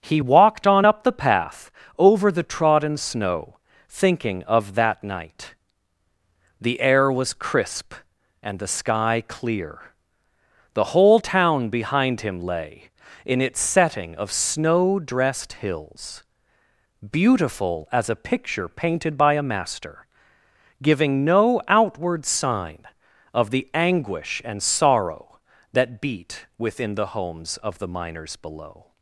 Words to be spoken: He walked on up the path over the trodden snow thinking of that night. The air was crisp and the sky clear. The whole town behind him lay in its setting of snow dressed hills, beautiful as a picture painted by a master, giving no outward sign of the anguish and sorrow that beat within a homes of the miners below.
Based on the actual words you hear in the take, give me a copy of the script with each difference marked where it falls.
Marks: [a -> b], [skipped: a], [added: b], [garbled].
He walked on up the path over the trodden snow thinking of that night. The air was crisp and the sky clear. The whole town behind him lay in its setting of snow dressed hills, beautiful as a picture painted by a master, giving no outward sign of the anguish and sorrow that beat within [a -> the] homes of the miners below.